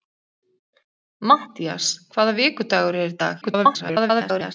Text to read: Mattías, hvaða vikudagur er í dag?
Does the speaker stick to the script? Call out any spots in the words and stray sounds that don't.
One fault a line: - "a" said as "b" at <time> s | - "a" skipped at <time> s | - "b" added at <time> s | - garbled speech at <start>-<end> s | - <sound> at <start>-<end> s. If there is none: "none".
- garbled speech at 3.4-4.5 s